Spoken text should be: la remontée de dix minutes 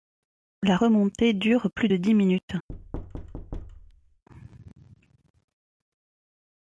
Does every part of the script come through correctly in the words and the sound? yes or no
no